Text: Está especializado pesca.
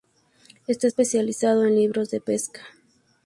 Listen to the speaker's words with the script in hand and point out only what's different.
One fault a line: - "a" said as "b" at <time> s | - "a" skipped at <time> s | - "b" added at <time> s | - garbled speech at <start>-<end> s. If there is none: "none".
- "en libros de" added at 1.6 s